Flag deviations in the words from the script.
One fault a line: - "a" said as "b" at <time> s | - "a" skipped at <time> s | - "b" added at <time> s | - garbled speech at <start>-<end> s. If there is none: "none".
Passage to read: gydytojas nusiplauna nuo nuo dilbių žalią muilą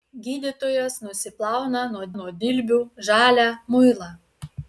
none